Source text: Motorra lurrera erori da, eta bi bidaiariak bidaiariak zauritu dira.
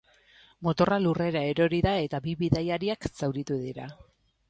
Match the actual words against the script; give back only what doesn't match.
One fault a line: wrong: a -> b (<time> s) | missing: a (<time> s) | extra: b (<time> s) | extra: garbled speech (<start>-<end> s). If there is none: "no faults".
missing: bidaiariak (3.1 s)